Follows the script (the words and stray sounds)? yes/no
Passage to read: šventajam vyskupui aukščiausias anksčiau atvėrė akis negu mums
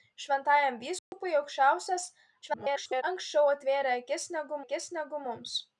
no